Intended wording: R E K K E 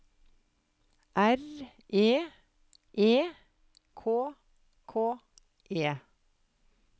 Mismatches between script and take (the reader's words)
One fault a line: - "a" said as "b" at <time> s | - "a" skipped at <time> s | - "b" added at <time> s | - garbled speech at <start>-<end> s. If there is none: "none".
- "E" added at 2.9 s